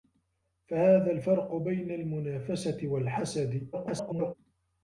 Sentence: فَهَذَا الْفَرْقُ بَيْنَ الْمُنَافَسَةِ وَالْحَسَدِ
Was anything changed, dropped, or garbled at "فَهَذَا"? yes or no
no